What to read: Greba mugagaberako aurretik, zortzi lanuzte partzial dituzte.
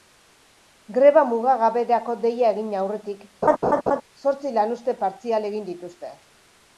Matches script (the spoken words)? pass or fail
fail